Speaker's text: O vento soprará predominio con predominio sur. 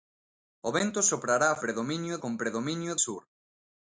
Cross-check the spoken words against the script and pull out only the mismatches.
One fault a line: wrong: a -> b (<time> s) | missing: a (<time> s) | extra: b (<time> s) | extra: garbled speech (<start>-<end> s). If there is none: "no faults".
no faults